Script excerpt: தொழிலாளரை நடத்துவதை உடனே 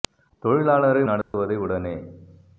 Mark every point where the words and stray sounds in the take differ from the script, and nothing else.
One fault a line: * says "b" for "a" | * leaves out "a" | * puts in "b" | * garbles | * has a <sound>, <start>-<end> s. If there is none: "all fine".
* has a dropout, 1.2-1.3 s